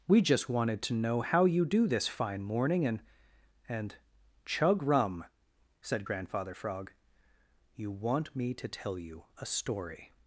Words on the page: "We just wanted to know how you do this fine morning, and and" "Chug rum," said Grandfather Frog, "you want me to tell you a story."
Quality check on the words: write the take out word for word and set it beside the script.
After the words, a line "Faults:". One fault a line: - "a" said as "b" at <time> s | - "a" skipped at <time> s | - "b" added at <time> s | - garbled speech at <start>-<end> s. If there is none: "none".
"We just wanted to know how you do this fine morning, and and" "Chug rum," said Grandfather Frog, "you want me to tell you a story."
Faults:
none